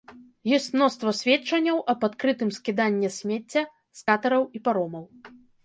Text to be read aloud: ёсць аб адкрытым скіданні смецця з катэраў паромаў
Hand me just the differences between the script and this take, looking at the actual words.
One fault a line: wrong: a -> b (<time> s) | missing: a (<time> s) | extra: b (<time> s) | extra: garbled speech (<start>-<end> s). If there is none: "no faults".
extra: мноства сведчанняў (0.8 s)
extra: і (4.6 s)